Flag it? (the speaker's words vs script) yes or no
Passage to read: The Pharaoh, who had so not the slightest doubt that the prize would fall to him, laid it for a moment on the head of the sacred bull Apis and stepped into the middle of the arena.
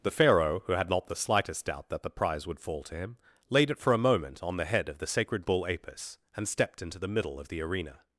yes